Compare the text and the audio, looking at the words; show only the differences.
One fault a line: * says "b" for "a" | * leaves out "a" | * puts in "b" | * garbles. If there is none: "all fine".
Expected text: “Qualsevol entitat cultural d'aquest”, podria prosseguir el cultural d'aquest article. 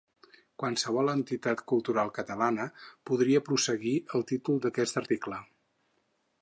* says "catalana" for "d'aquest"
* says "títol" for "cultural"